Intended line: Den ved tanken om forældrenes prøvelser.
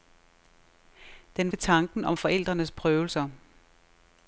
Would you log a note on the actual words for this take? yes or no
no